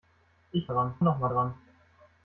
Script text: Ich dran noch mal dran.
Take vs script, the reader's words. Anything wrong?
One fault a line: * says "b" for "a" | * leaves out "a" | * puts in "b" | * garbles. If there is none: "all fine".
all fine